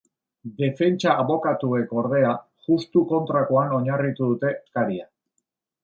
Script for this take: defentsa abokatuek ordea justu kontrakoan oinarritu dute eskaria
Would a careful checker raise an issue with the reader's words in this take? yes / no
no